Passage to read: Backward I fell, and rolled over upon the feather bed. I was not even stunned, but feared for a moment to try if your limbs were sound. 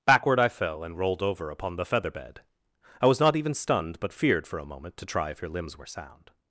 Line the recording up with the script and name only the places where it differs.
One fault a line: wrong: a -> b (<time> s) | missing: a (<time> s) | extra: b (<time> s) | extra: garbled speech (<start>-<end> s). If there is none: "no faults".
no faults